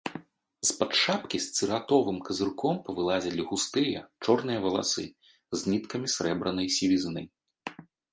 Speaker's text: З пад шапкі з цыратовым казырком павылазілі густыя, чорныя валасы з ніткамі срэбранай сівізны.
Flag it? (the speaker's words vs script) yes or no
no